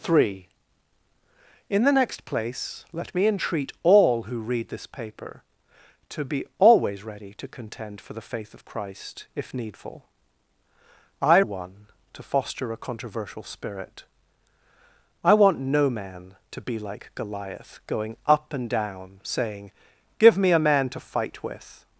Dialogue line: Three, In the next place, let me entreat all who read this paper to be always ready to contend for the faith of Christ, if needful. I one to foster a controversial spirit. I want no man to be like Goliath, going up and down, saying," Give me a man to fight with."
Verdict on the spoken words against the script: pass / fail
pass